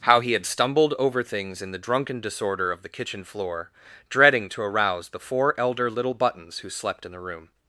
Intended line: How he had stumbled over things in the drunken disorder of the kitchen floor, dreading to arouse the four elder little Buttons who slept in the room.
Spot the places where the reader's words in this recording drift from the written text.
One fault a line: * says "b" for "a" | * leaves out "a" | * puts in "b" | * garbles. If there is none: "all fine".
all fine